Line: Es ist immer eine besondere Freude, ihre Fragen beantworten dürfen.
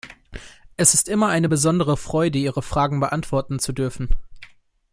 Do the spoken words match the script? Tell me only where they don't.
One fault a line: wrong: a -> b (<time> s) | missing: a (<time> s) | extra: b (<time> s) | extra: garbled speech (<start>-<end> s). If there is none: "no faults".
extra: zu (3.6 s)